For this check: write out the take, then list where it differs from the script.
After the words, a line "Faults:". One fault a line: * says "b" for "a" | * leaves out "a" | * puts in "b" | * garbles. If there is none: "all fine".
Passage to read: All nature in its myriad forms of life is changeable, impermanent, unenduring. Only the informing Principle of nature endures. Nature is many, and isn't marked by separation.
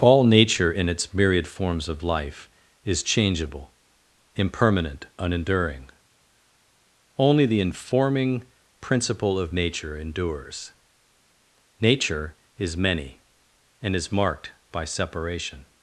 All nature in its myriad forms of life is changeable, impermanent, unenduring. Only the informing Principle of nature endures. Nature is many, and is marked by separation.
Faults:
* says "is" for "isn't"